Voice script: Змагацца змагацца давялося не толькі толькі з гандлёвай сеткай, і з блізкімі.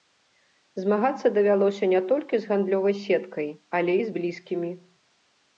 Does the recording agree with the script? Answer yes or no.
no